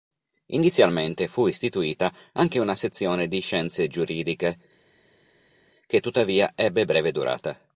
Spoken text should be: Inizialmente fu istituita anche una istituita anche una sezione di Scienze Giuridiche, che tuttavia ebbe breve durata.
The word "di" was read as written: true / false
true